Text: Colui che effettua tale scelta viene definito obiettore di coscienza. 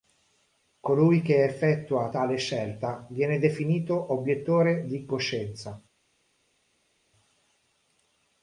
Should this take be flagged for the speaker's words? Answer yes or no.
no